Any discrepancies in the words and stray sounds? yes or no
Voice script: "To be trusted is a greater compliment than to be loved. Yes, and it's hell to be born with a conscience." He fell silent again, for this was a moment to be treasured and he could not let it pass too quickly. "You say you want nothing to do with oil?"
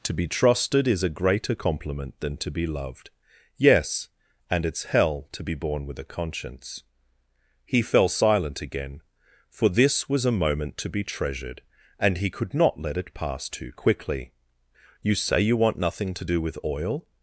no